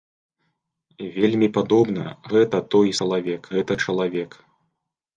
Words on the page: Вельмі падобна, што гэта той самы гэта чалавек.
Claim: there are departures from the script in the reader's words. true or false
true